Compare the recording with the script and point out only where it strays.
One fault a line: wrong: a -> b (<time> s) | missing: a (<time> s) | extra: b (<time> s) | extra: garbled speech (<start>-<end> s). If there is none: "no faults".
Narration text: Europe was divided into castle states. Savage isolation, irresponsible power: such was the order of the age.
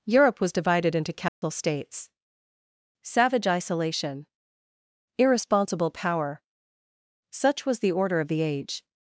no faults